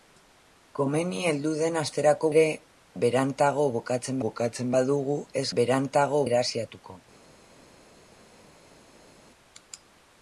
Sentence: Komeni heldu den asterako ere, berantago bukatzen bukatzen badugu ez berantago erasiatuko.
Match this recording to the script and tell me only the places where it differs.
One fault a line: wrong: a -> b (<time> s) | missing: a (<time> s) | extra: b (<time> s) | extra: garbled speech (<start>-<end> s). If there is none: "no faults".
no faults